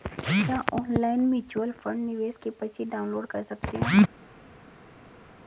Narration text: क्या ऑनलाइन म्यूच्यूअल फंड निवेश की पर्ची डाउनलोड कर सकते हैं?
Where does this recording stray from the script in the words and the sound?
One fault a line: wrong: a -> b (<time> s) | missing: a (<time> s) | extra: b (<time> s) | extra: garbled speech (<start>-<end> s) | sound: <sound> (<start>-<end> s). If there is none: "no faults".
no faults